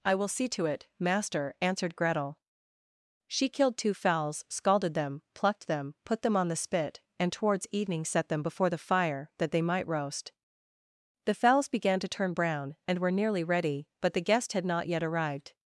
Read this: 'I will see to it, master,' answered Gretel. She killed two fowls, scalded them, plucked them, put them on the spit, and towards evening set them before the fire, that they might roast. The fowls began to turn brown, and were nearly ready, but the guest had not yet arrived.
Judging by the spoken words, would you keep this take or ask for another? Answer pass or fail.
pass